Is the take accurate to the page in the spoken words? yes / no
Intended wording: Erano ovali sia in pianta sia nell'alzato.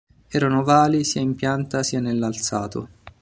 yes